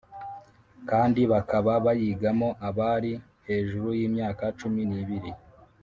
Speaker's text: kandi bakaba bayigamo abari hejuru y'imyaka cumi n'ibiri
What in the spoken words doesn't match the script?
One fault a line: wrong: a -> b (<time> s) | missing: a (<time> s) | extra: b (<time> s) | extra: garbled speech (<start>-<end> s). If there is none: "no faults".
no faults